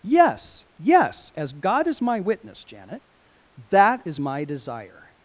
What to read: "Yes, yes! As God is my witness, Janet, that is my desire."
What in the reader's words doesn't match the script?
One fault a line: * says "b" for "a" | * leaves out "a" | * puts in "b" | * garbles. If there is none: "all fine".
all fine